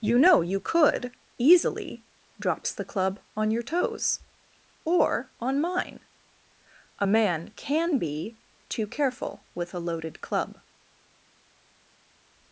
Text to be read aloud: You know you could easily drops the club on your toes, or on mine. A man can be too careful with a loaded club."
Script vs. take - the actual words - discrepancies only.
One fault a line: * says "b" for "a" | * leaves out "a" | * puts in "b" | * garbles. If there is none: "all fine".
all fine